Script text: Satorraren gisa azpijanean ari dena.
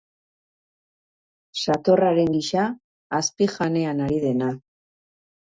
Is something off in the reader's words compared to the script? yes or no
no